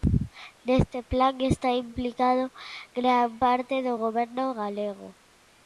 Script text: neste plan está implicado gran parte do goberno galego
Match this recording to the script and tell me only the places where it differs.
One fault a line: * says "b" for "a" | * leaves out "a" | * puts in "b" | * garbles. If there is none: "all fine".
all fine